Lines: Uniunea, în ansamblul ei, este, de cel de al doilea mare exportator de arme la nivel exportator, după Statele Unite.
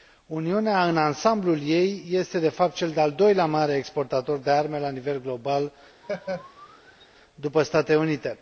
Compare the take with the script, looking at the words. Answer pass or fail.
fail